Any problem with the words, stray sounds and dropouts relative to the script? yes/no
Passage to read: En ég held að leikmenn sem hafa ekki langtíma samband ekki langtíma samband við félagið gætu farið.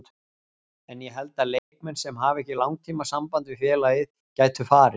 yes